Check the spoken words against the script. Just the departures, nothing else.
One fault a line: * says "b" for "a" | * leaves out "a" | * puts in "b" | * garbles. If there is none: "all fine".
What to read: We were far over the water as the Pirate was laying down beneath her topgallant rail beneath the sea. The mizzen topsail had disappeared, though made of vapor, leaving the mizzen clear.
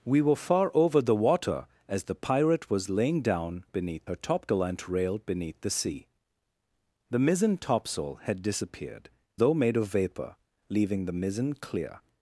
all fine